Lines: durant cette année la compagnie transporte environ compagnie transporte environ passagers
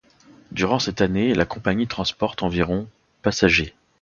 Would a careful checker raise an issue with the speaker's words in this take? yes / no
yes